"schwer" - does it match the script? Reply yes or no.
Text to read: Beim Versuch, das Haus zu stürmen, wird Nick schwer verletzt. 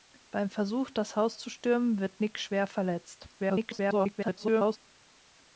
yes